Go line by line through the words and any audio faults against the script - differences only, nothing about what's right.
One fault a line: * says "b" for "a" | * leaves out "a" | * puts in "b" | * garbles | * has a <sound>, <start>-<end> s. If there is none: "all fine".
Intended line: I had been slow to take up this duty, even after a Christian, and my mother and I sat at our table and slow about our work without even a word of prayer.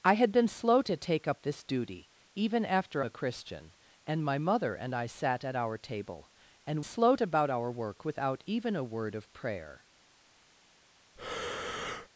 * has a breath, 11.2-12.1 s